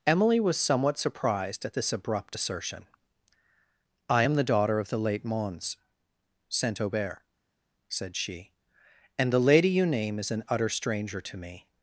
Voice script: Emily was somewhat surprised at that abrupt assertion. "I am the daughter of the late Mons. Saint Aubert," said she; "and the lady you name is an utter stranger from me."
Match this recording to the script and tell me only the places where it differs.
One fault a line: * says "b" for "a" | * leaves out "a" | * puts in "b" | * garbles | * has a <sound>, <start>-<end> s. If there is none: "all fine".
* says "this" for "that"
* says "to" for "from"